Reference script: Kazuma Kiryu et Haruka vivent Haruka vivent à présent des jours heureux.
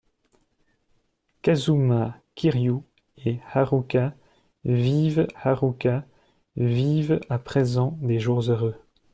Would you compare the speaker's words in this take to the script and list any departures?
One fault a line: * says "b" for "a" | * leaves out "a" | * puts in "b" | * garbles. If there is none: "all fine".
all fine